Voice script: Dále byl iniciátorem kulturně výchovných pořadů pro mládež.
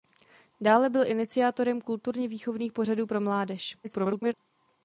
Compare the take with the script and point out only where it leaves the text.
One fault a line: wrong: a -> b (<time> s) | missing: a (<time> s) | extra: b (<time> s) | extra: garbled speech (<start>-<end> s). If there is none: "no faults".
extra: garbled speech (3.8-4.3 s)